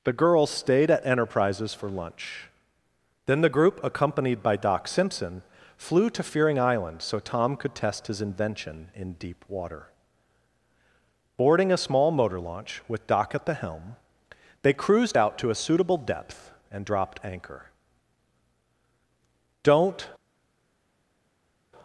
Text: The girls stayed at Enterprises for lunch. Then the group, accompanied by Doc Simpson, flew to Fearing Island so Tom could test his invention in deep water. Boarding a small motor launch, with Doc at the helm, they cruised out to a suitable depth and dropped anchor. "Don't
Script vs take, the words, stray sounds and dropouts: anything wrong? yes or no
no